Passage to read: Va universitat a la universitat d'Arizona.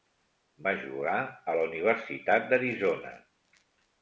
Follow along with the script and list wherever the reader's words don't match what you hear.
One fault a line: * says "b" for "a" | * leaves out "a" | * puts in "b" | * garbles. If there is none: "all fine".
* says "jugar" for "universitat"